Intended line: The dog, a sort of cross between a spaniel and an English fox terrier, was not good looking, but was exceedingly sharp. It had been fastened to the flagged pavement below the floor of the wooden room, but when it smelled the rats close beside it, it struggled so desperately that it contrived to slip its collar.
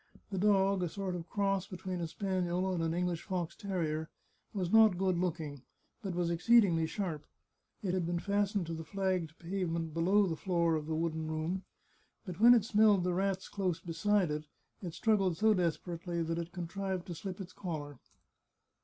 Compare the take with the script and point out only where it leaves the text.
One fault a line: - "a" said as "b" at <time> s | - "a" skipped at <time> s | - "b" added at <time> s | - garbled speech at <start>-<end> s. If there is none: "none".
none